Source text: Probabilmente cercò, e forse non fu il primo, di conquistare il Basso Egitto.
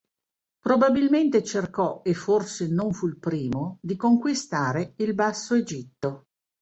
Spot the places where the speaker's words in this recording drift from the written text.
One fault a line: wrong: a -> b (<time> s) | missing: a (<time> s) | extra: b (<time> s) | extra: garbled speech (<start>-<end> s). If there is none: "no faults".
no faults